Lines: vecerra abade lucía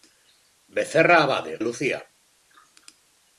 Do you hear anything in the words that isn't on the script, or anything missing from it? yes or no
no